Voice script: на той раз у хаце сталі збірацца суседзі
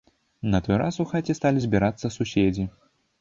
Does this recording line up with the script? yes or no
yes